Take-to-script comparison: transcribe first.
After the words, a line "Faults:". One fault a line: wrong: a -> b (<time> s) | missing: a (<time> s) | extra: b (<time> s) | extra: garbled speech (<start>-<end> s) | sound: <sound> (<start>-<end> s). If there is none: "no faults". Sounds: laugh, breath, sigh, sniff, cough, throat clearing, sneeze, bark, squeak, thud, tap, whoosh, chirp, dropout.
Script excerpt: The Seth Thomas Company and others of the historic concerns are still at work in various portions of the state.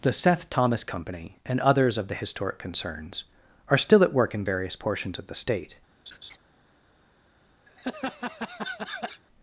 The Seth Thomas Company and others of the historic concerns are still at work in various portions of the state.
Faults:
sound: laugh (6.1-6.4 s)
sound: laugh (7.7-9.2 s)